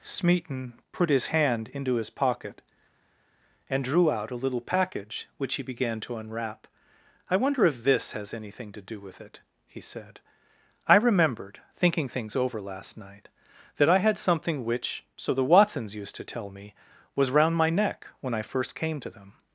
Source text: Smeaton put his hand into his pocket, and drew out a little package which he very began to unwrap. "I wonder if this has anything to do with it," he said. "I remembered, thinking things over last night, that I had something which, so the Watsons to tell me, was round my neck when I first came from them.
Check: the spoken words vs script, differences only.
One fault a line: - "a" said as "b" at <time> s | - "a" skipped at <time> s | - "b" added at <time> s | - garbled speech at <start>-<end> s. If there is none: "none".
- "very" skipped at 5.6 s
- "used" added at 15.9 s
- "from" said as "to" at 19.0 s